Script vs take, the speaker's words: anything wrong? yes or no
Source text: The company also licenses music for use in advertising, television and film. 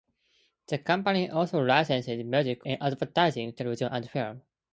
yes